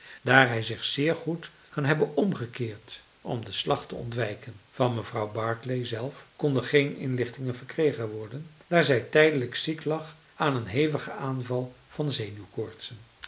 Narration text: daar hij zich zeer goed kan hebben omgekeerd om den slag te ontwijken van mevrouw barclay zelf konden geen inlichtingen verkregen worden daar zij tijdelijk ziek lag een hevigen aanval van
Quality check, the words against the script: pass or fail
fail